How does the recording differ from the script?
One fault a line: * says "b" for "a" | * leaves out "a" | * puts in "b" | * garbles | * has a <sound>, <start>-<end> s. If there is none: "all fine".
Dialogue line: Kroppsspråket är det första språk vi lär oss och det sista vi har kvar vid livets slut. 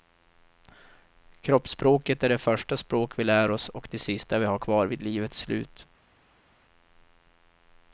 all fine